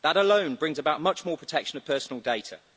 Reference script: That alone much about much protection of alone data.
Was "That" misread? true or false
false